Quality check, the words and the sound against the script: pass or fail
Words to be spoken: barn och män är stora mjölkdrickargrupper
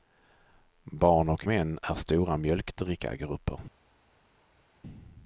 pass